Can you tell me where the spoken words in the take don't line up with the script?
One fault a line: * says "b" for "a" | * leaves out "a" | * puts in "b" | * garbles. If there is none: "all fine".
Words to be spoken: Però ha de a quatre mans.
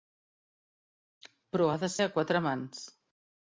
all fine